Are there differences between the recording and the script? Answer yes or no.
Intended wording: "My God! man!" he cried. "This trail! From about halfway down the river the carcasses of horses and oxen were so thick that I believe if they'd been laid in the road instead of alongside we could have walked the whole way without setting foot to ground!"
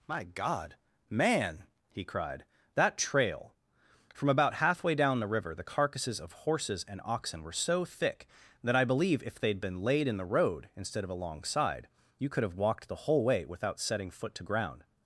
yes